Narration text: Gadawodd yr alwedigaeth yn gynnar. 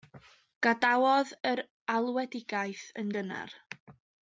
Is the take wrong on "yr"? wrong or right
right